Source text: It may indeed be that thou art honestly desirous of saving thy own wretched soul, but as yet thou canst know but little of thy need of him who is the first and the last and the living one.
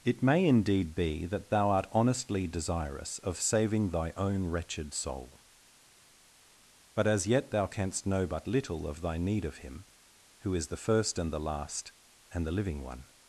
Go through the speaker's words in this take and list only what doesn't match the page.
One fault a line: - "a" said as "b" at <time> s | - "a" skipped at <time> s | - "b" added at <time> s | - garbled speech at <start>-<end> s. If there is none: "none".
none